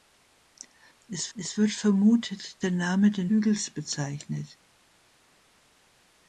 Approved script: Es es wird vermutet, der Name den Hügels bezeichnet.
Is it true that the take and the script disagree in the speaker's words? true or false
false